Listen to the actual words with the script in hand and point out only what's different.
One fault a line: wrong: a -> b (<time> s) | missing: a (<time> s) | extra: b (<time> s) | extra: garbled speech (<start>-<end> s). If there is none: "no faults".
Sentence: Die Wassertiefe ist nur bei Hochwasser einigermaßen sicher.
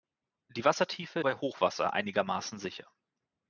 missing: ist nur (1.2 s)